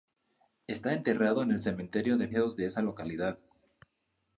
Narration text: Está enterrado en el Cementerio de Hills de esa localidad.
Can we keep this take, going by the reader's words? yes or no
yes